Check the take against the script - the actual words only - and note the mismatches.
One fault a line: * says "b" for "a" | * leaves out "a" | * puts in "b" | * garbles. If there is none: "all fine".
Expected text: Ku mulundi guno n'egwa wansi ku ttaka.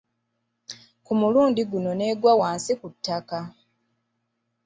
all fine